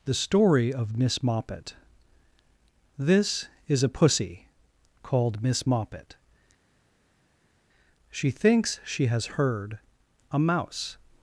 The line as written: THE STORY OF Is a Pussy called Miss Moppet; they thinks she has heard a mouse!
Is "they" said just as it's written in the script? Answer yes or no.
no